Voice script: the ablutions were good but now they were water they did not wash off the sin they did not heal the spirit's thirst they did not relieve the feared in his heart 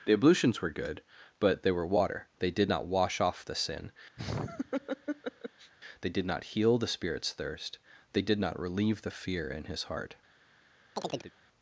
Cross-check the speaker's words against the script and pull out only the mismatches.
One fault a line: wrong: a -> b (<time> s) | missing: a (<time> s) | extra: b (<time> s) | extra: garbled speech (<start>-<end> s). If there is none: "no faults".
missing: now (1.6 s)
wrong: feared -> fear (9.1 s)